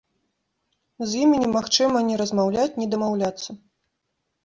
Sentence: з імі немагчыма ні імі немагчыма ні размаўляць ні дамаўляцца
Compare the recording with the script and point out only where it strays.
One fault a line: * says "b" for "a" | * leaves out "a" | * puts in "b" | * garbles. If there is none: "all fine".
* leaves out "імі немагчыма ні"